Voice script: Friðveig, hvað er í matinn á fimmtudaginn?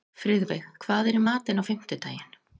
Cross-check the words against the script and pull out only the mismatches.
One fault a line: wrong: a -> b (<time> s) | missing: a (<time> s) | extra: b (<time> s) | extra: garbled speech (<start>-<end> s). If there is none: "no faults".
no faults